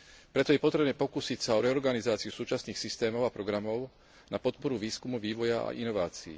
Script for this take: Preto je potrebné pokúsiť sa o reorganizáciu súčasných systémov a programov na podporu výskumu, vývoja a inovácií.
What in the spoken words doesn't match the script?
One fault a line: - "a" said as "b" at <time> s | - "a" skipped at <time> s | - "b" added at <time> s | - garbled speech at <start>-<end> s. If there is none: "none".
none